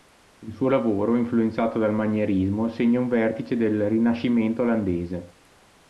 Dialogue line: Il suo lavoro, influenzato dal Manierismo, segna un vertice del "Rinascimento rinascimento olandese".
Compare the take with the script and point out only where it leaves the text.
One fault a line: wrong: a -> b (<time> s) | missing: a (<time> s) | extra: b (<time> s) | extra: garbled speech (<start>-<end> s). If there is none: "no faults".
missing: rinascimento (4.6 s)